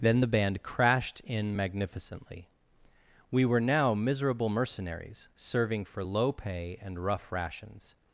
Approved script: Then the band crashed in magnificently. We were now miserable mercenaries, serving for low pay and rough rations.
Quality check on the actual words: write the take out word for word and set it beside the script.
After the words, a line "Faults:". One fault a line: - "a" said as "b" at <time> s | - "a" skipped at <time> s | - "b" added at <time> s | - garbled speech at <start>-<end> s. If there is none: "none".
Then the band crashed in magnificently. We were now miserable mercenaries, serving for low pay and rough rations.
Faults:
none